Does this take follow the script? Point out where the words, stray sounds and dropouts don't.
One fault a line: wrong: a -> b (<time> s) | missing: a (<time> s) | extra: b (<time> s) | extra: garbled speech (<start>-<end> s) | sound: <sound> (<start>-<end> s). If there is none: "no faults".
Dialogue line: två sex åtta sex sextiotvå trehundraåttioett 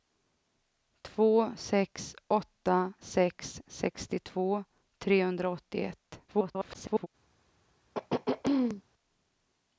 extra: garbled speech (6.3-7.1 s)
sound: throat clearing (7.9-8.8 s)